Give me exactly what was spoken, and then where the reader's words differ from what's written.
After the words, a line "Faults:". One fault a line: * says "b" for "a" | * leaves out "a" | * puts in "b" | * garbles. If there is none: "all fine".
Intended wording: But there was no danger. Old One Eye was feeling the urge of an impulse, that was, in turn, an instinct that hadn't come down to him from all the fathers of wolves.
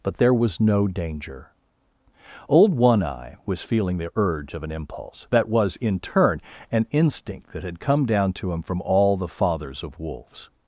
But there was no danger. Old One Eye was feeling the urge of an impulse, that was, in turn, an instinct that had come down to him from all the fathers of wolves.
Faults:
* says "had" for "hadn't"